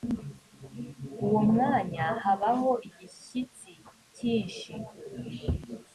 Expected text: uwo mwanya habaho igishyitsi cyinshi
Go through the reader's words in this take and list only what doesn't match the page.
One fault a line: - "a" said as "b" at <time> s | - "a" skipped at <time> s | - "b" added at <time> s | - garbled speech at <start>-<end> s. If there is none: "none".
none